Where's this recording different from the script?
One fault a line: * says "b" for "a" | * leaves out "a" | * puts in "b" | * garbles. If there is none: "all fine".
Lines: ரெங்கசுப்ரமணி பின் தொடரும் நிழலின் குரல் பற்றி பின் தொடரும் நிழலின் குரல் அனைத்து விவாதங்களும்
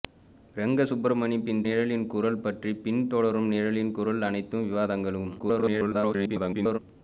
* leaves out "தொடரும்"
* garbles